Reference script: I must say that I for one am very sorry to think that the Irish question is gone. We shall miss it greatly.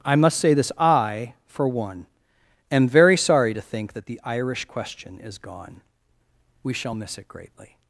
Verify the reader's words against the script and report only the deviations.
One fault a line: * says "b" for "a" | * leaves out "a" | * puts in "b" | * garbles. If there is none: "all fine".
* says "this" for "that"